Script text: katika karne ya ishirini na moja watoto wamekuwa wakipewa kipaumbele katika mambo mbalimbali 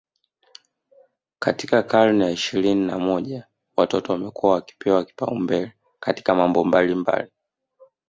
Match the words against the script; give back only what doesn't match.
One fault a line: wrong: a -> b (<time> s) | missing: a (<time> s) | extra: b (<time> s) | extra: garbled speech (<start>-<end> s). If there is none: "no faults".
no faults